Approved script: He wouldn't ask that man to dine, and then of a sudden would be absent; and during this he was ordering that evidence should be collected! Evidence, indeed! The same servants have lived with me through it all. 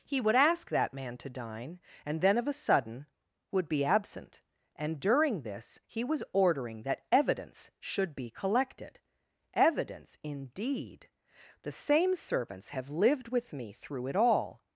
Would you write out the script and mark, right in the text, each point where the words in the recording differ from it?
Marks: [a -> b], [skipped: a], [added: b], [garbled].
He [wouldn't -> would] ask that man to dine, and then of a sudden would be absent; and during this he was ordering that evidence should be collected! Evidence, indeed! The same servants have lived with me through it all.